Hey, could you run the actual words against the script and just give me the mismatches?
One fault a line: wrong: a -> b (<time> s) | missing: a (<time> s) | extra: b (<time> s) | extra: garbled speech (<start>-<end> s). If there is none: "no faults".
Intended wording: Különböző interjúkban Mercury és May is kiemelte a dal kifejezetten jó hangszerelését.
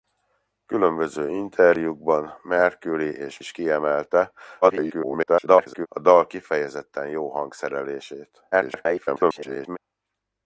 missing: May (3.4 s)
extra: garbled speech (4.6-5.9 s)
extra: garbled speech (8.5-9.8 s)